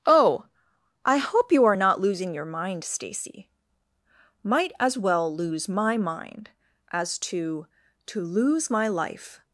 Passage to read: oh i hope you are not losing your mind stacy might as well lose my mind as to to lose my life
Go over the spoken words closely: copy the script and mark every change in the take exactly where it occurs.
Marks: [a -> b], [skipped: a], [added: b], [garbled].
oh i hope you are not losing your mind stacy might as well lose my mind as to to lose my life